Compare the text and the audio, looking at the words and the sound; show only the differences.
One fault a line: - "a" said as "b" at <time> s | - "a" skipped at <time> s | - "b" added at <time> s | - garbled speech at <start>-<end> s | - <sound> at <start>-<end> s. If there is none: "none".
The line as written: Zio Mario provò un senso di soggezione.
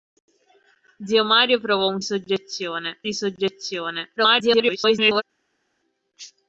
- "senso" said as "soggezione" at 2.0 s
- garbled speech at 4.2-5.2 s